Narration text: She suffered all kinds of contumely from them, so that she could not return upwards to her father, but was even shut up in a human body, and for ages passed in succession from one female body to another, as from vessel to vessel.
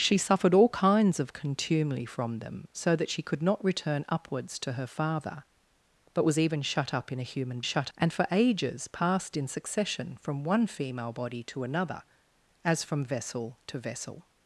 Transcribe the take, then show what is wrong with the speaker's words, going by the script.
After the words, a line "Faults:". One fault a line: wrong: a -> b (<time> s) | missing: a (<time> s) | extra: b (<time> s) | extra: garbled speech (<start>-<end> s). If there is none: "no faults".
She suffered all kinds of contumely from them, so that she could not return upwards to her father, but was even shut up in a human shut, and for ages passed in succession from one female body to another, as from vessel to vessel.
Faults:
wrong: body -> shut (7.6 s)